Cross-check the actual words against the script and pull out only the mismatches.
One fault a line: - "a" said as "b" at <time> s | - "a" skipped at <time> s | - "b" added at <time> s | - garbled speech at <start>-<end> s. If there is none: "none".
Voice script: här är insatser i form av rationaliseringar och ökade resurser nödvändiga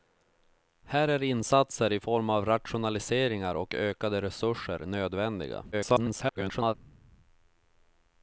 - garbled speech at 5.7-6.7 s